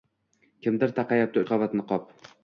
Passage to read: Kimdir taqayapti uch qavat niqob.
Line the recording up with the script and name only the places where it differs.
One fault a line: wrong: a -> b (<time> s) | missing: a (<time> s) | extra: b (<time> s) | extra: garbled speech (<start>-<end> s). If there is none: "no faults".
missing: uch (1.4 s)